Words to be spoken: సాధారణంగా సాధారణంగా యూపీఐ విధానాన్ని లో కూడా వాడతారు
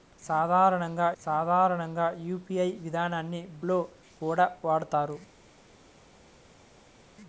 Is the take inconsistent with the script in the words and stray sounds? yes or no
no